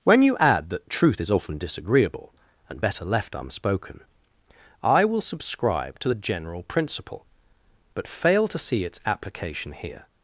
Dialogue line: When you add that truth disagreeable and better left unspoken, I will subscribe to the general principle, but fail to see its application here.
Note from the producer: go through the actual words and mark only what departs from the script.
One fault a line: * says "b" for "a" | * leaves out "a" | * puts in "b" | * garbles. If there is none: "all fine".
* puts in "is often"